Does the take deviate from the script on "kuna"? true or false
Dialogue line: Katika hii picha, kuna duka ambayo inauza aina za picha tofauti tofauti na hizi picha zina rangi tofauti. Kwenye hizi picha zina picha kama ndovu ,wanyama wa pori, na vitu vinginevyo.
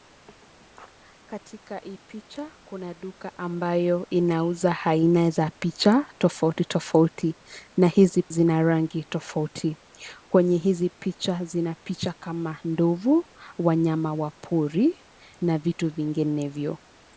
false